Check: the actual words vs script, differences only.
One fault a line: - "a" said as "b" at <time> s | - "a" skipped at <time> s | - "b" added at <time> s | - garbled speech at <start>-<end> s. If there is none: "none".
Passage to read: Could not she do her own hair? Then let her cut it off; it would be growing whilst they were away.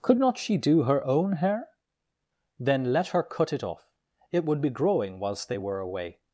none